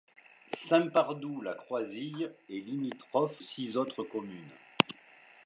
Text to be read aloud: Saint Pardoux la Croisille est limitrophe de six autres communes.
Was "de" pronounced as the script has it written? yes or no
no